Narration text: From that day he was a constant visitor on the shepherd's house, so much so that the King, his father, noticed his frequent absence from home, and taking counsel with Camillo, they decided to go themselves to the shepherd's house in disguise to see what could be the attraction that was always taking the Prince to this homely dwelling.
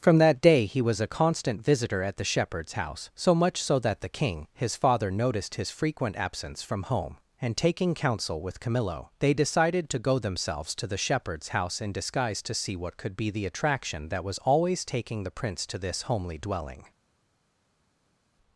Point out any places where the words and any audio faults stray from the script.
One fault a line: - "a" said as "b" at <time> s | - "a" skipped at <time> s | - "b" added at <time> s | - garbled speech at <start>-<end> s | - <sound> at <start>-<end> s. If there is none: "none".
- "on" said as "at" at 2.0 s